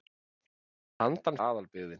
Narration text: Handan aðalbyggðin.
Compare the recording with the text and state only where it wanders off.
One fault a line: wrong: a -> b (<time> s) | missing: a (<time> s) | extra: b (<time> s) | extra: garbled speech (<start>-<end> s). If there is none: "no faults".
no faults